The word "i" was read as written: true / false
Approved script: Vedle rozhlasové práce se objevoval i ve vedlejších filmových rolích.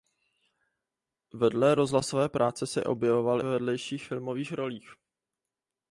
false